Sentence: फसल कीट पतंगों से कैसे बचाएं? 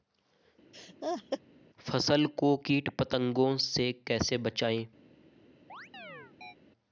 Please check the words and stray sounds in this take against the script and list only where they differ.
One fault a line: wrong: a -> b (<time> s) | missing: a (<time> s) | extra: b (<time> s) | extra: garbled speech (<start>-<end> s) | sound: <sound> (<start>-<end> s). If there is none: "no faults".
sound: laugh (0.7-1.4 s)
extra: को (2.4 s)
sound: chirp (5.7-6.6 s)